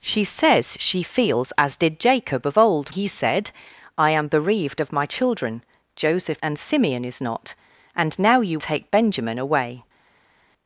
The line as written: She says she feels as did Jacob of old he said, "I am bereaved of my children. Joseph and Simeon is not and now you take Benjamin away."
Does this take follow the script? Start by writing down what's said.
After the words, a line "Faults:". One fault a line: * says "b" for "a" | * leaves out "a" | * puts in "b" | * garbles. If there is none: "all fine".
She says she feels as did Jacob of old he said, "I am bereaved of my children. Joseph and Simeon is not and now you take Benjamin away."
Faults:
all fine